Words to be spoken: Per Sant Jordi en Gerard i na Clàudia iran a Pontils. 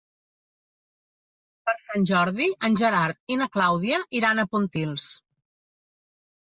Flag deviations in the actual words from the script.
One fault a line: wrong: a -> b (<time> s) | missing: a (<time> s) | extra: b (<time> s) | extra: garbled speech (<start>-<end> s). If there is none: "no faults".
no faults